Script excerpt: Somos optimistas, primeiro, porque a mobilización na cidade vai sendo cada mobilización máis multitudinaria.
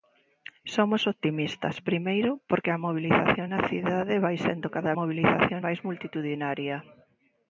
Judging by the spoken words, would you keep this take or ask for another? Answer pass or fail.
pass